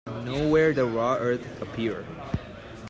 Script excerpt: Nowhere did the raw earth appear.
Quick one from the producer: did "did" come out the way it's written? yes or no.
no